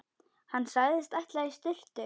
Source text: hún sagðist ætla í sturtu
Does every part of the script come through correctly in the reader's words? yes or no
no